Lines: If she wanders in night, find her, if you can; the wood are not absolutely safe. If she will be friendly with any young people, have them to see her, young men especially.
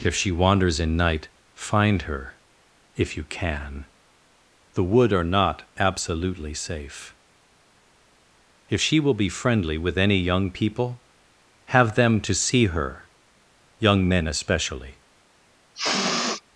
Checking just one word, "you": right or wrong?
right